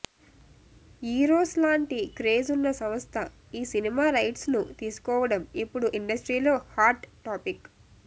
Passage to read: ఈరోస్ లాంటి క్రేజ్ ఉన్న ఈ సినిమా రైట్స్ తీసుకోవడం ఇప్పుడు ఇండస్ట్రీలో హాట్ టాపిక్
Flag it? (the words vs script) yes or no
yes